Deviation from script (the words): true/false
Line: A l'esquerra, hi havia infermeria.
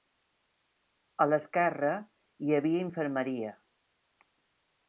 false